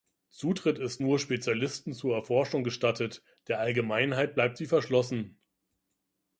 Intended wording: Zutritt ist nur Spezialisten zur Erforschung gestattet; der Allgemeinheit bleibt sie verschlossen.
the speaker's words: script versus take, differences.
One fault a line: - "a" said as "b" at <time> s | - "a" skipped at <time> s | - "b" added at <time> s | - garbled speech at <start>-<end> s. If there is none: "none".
none